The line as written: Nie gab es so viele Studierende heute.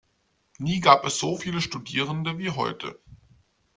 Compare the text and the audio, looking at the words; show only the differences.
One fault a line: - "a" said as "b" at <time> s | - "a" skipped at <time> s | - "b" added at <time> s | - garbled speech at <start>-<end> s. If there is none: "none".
- "wie" added at 2.4 s